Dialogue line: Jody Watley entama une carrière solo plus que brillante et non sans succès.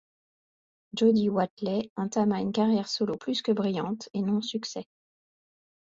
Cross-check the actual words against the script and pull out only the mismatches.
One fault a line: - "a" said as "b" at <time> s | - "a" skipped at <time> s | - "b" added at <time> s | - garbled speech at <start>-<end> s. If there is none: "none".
- "sans" skipped at 4.4 s